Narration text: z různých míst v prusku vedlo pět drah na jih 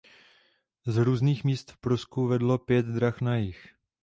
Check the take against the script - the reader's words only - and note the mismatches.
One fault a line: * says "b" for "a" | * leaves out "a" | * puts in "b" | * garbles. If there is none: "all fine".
all fine